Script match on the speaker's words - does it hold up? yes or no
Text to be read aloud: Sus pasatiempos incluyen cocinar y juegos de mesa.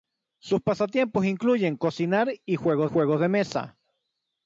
no